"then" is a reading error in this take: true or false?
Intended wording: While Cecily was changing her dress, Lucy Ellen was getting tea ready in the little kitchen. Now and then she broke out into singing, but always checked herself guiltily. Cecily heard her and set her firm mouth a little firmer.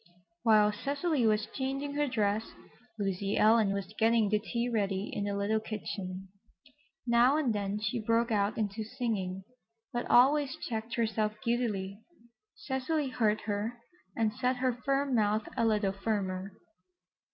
false